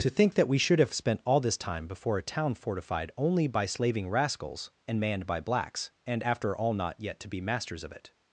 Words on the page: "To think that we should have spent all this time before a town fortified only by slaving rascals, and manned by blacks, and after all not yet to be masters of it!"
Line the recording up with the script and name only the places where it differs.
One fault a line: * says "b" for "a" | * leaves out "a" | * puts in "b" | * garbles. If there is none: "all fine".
all fine